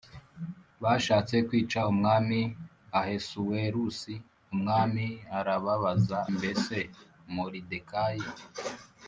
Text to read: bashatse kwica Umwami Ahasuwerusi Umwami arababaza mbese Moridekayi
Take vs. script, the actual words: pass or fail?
pass